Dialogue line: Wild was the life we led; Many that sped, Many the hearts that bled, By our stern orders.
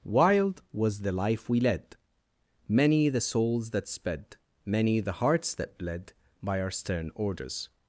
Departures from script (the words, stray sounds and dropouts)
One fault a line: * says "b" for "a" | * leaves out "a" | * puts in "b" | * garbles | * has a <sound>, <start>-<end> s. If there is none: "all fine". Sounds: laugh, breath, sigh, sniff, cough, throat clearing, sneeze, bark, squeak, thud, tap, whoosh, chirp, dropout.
* puts in "the souls"